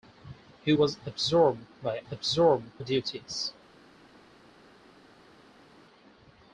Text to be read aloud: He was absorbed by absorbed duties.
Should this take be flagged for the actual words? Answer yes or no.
no